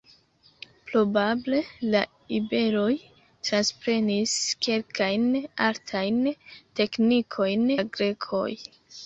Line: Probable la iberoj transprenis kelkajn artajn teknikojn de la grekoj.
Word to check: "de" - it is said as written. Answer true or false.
false